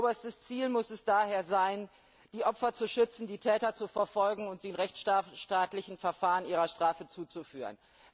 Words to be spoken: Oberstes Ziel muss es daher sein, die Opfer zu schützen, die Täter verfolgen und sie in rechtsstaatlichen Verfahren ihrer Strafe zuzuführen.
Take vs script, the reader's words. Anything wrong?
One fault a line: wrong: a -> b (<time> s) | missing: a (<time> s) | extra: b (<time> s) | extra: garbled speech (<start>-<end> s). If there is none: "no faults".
extra: zu (3.8 s)